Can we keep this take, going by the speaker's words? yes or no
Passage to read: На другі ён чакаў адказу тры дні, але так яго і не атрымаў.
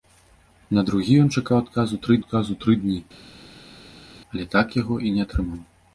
no